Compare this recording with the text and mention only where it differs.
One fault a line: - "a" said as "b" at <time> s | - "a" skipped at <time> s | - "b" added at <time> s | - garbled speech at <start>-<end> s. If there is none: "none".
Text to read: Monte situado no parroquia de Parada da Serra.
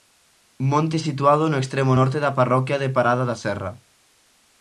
- "extremo norte da" added at 1.6 s